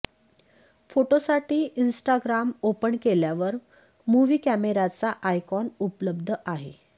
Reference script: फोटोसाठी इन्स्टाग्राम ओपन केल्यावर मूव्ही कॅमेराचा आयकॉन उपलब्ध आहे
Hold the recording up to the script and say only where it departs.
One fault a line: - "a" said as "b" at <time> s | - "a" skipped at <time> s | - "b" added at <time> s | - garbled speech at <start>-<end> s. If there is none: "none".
none